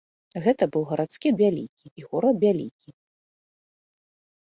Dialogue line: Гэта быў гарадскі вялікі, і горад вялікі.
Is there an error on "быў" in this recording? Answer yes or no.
no